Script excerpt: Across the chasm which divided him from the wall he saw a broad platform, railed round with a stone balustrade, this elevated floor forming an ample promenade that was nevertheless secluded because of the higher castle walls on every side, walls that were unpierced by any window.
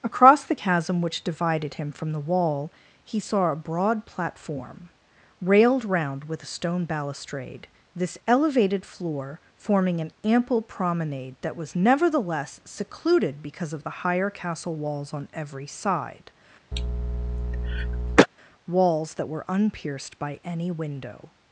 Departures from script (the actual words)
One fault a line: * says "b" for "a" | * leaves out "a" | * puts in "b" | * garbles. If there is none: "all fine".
all fine